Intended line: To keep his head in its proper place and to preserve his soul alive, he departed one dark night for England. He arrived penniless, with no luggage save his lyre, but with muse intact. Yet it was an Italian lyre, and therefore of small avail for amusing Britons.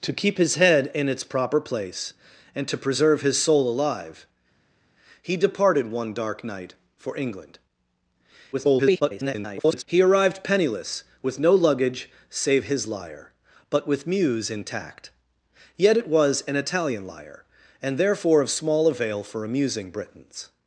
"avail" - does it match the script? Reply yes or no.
yes